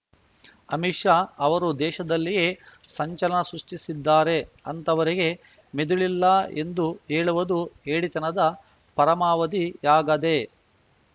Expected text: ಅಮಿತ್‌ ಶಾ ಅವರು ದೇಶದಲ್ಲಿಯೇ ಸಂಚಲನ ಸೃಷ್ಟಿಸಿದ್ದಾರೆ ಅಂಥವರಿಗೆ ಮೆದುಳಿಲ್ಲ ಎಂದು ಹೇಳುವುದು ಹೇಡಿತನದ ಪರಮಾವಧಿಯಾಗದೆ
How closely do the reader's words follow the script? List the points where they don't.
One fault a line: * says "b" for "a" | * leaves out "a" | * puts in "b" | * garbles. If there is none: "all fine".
all fine